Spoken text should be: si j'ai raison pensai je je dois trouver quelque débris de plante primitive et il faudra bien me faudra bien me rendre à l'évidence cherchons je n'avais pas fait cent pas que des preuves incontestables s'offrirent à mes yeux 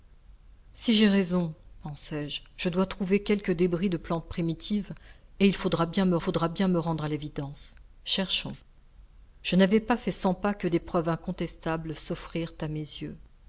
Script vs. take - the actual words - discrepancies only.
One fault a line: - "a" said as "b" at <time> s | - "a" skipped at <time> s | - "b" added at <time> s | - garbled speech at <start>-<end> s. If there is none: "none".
none